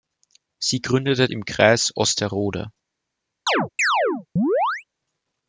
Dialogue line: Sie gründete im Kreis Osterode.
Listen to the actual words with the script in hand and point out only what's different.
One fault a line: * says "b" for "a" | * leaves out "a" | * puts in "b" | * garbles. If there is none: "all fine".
all fine